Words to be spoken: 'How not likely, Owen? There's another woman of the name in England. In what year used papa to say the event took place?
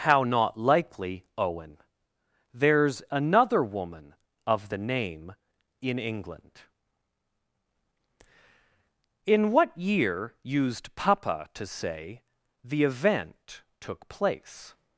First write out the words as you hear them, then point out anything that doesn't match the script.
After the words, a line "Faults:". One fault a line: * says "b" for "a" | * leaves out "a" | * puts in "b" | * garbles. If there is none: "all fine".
'How not likely, Owen? There's another woman of the name in England. In what year used papa to say the event took place?
Faults:
all fine